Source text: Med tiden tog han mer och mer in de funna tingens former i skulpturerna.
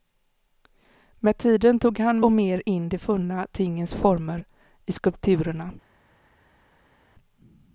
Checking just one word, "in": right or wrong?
right